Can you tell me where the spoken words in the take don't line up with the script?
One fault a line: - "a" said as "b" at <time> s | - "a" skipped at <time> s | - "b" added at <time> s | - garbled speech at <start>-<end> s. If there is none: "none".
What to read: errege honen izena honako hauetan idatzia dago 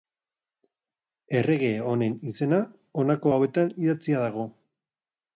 none